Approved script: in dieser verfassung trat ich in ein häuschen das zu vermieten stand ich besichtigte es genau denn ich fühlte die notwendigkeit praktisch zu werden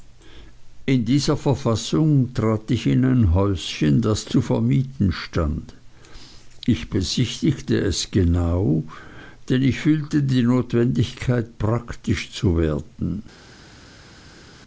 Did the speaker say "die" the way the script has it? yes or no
yes